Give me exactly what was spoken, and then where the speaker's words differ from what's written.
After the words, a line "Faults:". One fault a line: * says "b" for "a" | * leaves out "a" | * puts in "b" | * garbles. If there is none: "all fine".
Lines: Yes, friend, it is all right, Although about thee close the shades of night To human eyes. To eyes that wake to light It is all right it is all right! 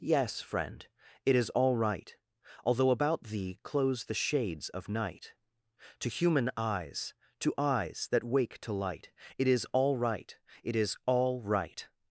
Yes, friend, it is all right, Although about thee close the shades of night To human eyes. To eyes that wake to light It is all right it is all right!
Faults:
all fine